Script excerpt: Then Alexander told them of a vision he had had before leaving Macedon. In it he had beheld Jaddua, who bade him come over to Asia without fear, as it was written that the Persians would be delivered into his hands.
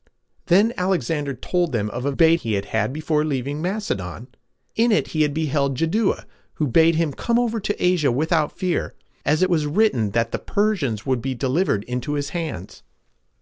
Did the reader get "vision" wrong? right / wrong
wrong